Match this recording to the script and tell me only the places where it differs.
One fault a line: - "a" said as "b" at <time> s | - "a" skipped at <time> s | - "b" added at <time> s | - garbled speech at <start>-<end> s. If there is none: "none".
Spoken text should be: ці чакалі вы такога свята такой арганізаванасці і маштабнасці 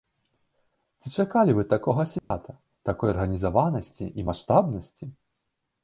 none